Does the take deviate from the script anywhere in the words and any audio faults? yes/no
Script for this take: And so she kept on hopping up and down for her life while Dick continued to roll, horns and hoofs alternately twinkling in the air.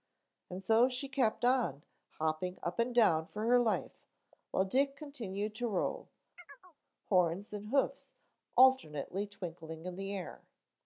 yes